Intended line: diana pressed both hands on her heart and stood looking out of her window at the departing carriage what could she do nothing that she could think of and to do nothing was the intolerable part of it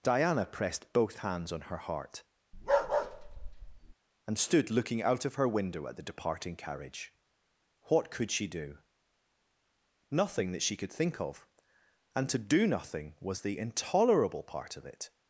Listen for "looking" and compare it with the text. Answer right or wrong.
right